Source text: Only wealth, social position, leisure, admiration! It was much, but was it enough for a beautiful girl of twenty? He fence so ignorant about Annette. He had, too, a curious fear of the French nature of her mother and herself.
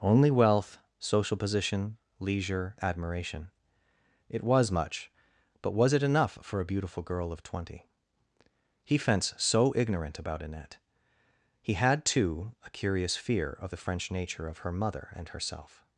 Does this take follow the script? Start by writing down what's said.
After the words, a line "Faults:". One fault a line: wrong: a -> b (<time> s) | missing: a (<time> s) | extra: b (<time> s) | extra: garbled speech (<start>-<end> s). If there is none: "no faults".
Only wealth, social position, leisure, admiration! It was much, but was it enough for a beautiful girl of twenty? He fence so ignorant about Annette. He had, too, a curious fear of the French nature of her mother and herself.
Faults:
no faults